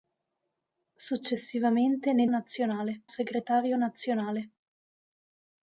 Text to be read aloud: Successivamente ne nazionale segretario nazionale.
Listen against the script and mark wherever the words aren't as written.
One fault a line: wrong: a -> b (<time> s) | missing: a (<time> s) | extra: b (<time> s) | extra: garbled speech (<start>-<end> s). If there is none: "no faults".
no faults